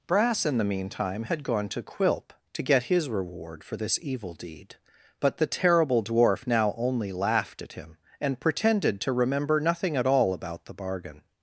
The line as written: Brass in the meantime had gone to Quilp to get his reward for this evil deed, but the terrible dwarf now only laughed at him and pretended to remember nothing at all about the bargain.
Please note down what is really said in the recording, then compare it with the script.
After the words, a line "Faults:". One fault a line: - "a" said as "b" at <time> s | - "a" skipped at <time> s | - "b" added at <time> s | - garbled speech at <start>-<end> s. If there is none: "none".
Brass in the meantime had gone to Quilp to get his reward for this evil deed, but the terrible dwarf now only laughed at him and pretended to remember nothing at all about the bargain.
Faults:
none